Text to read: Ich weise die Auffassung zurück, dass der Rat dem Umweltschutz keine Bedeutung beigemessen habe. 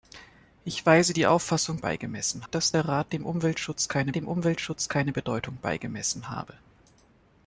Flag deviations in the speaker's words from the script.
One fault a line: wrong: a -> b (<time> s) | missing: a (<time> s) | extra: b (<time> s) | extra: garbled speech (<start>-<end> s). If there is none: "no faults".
wrong: zurück -> beigemessen (1.8 s)
extra: dem Umweltschutz keine (4.2 s)